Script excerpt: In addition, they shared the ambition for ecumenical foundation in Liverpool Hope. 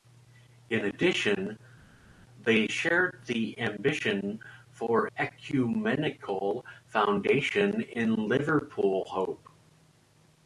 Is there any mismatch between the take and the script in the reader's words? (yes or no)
no